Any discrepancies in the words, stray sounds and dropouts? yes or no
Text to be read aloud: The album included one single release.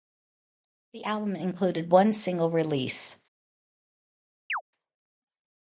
yes